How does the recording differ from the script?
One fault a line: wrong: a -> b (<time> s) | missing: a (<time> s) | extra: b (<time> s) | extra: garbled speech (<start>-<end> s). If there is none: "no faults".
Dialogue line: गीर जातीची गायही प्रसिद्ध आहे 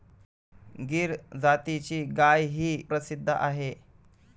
no faults